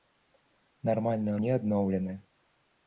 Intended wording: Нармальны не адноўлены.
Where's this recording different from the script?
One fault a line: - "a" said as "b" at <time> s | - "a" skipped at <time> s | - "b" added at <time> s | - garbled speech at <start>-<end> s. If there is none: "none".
none